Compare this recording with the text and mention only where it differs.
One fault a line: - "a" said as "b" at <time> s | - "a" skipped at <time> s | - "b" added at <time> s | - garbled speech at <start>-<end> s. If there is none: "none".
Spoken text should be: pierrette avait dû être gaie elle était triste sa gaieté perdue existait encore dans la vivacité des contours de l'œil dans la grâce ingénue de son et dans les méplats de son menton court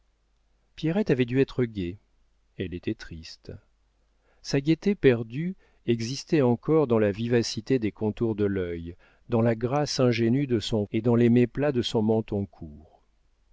none